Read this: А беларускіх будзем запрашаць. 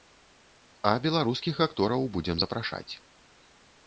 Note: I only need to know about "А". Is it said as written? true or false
true